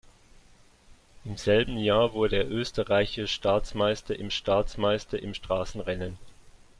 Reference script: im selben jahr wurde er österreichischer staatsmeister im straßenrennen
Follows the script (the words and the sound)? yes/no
no